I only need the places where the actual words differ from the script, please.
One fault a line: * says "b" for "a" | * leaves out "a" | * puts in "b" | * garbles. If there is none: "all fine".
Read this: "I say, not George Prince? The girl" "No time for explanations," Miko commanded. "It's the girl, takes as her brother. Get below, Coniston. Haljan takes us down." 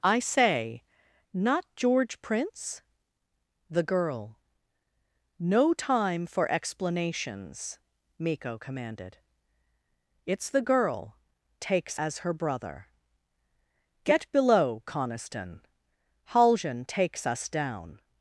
all fine